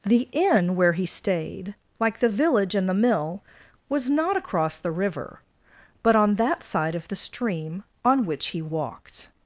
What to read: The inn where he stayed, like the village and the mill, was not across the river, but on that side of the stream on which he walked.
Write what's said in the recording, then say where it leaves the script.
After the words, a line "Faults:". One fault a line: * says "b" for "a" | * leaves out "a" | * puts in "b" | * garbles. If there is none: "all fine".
The inn where he stayed, like the village and the mill, was not across the river, but on that side of the stream on which he walked.
Faults:
all fine